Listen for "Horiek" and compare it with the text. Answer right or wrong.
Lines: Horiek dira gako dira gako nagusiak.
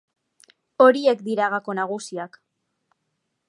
right